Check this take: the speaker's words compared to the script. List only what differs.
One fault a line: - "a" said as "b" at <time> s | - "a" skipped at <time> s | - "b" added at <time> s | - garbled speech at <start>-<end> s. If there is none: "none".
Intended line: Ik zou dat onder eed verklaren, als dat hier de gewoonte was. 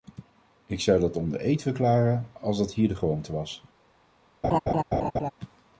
none